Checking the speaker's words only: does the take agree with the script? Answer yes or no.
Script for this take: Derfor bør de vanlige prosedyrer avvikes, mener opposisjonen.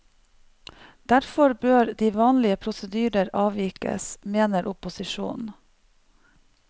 yes